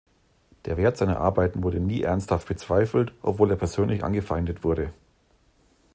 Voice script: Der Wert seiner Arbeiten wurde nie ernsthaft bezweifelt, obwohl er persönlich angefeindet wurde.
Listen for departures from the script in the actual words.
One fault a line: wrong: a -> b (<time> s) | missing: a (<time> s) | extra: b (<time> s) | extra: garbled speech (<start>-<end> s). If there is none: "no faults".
no faults